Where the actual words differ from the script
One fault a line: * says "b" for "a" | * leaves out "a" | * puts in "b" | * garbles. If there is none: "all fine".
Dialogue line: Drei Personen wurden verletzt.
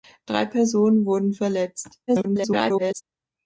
* garbles